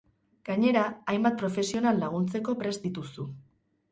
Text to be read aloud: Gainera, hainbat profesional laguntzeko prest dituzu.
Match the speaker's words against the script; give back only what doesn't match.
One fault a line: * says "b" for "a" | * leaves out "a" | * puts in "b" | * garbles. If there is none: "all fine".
all fine